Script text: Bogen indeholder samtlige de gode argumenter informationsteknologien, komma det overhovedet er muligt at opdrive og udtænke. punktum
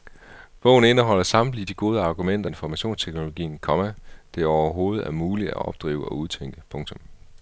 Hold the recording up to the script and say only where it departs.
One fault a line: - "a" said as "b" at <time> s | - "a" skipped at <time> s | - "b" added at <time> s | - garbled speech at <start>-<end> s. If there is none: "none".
none